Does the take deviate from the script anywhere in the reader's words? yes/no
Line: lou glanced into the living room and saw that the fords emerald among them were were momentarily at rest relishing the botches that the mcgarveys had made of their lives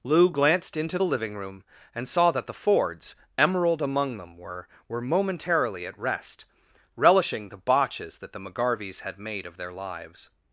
no